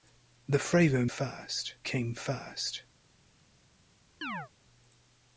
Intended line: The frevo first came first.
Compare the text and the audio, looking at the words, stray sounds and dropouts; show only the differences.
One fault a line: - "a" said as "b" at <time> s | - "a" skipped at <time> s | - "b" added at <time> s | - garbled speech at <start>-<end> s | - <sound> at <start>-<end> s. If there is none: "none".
- chirp at 4.2-4.5 s